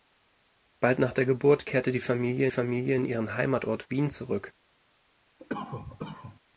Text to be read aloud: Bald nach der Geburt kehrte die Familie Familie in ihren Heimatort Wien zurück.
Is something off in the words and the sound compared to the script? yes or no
yes